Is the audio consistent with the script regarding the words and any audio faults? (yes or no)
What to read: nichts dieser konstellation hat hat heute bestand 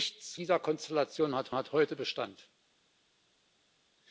yes